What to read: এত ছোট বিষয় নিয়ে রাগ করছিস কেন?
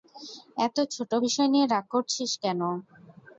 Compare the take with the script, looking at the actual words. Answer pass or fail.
pass